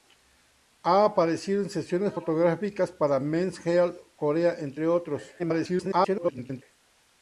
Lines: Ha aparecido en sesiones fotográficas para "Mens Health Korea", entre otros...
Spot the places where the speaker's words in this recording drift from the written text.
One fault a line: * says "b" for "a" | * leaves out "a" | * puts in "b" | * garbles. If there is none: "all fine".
* garbles